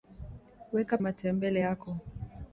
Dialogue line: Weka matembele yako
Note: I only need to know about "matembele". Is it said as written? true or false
true